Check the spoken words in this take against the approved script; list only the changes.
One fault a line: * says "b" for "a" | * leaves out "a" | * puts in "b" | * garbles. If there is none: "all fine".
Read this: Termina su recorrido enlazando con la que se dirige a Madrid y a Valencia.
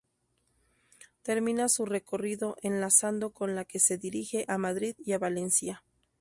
all fine